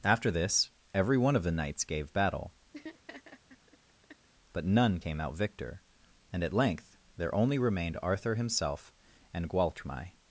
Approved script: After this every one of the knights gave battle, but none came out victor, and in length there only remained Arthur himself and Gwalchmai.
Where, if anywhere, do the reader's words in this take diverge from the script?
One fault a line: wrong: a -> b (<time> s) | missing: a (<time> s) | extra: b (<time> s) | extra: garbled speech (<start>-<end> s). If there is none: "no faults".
wrong: in -> at (6.4 s)